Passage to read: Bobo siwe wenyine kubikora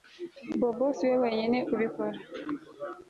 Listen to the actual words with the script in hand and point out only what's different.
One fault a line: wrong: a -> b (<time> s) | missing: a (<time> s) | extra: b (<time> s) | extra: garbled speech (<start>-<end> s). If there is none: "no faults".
no faults